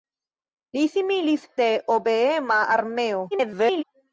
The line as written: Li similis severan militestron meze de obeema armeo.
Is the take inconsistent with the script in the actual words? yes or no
yes